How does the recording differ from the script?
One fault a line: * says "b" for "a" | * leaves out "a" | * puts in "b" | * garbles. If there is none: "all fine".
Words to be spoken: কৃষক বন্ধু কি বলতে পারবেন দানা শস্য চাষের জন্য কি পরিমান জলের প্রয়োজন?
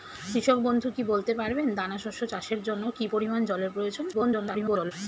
* garbles